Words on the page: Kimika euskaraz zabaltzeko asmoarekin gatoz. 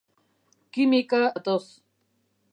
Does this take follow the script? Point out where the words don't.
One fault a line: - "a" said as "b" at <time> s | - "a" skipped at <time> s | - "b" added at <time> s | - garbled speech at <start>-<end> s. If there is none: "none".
- "euskaraz zabaltzeko asmoarekin" skipped at 1.2 s